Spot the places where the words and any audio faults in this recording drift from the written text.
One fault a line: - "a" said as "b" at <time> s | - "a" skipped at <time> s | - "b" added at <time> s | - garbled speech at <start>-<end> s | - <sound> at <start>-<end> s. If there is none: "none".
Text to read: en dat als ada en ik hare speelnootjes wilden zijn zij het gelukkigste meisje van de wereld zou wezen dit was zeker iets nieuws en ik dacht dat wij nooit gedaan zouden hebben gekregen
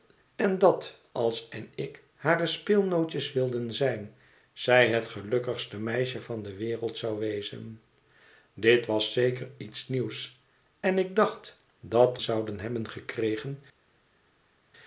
- "ada" skipped at 1.5 s
- "wij nooit gedaan" skipped at 12.2 s